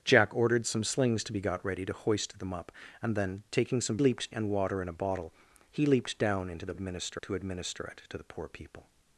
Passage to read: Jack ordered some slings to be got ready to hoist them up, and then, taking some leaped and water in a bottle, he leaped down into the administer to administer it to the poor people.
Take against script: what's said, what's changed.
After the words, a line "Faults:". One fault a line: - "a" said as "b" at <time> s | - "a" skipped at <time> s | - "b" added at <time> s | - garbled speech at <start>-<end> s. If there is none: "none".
Jack ordered some slings to be got ready to hoist them up, and then, taking some leaped and water in a bottle, he leaped down into the administer to administer it to the poor people.
Faults:
none